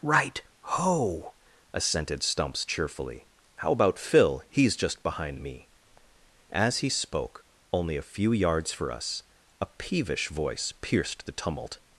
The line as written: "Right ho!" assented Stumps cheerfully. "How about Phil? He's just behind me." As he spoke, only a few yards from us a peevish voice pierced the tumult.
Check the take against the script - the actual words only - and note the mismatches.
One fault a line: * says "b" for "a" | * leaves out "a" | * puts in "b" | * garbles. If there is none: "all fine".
* says "for" for "from"